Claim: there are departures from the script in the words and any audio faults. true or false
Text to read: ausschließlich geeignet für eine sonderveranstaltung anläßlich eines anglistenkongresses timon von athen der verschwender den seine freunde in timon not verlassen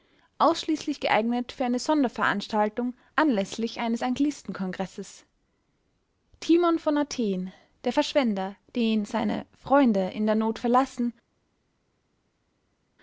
true